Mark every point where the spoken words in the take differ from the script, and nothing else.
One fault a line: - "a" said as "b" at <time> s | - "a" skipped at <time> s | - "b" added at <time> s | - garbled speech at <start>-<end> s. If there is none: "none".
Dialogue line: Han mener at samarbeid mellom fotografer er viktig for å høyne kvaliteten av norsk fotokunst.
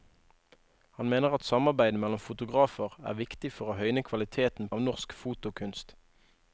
none